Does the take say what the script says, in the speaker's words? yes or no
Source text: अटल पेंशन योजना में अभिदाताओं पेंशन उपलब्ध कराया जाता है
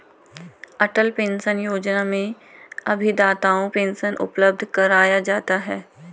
yes